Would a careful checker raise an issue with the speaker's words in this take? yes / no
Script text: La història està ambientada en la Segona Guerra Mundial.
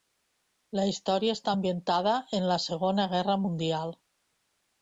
no